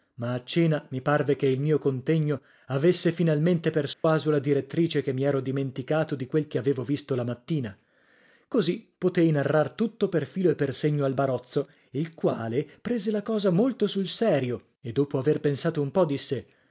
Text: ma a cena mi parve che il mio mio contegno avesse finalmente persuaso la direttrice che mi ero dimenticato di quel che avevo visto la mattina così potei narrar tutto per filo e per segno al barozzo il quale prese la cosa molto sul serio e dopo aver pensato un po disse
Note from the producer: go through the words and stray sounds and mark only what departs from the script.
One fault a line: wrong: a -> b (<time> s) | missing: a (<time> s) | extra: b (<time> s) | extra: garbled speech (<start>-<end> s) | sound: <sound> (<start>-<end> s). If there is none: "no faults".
missing: mio (1.8 s)
sound: dropout (3.9-4.0 s)